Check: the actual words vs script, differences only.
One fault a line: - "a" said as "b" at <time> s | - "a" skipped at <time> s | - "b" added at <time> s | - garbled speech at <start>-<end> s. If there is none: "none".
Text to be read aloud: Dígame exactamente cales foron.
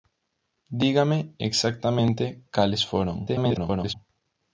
- garbled speech at 3.3-3.9 s